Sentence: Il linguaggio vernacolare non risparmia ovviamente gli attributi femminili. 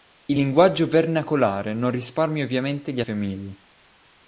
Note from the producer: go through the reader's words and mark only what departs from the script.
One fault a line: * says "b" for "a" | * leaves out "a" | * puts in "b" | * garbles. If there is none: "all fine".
* leaves out "attributi"